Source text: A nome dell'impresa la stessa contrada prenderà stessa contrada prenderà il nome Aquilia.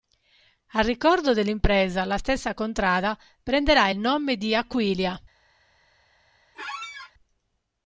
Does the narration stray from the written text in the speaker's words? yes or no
yes